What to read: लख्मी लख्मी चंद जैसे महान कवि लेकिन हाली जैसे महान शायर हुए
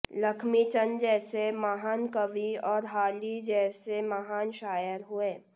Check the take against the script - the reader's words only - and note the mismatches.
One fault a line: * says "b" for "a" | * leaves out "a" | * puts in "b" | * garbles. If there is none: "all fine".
* leaves out "लख्मी"
* says "और" for "लेकिन"